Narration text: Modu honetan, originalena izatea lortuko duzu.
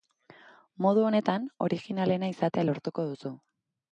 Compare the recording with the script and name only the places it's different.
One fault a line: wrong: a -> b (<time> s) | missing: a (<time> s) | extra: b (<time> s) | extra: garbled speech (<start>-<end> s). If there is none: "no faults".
no faults